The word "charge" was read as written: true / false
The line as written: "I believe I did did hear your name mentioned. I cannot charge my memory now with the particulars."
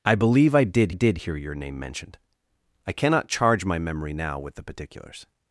true